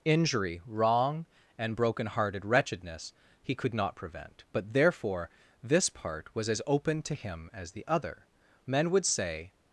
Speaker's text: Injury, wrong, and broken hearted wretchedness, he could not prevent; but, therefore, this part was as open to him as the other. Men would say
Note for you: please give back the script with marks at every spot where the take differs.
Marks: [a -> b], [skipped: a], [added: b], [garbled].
Injury, wrong, and broken hearted wretchedness, he could not prevent; but, therefore, this part was as open to him as the other. Men would say